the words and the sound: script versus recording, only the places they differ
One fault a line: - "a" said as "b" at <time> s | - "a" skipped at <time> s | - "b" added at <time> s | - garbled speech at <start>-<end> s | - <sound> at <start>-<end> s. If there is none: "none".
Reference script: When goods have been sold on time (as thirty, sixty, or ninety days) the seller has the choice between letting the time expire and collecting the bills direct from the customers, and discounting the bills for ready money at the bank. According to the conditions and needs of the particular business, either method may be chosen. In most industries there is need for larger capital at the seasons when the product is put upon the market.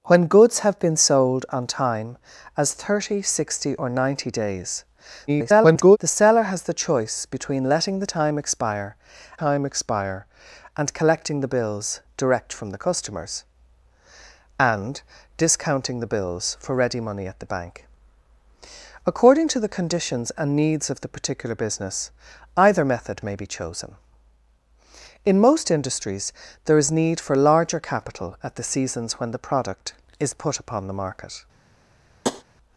- garbled speech at 5.3-6.0 s
- "time expire" added at 9.4 s
- tap at 32.2-32.4 s